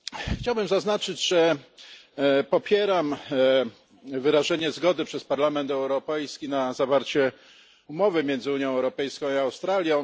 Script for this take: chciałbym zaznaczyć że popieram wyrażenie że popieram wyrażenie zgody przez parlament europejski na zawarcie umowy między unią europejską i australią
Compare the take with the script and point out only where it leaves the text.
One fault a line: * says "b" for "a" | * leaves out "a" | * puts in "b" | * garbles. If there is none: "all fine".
* leaves out "że popieram wyrażenie"